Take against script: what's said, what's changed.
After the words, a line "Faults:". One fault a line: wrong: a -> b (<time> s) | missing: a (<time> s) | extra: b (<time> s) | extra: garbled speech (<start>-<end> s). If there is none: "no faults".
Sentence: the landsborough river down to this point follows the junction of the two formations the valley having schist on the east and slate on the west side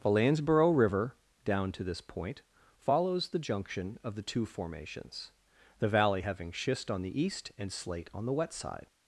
the landsborough river down to this point follows the junction of the two formations the valley having schist on the east and slate on the wet side
Faults:
wrong: west -> wet (8.3 s)